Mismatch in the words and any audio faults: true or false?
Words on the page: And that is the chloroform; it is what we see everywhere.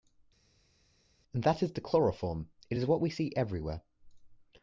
false